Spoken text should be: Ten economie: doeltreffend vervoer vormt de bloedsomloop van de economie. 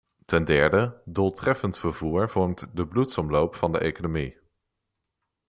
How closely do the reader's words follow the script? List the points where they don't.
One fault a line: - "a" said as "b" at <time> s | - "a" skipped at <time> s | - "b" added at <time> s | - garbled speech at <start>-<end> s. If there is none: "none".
- "economie" said as "derde" at 0.4 s